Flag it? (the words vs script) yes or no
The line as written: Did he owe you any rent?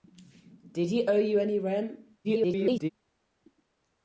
yes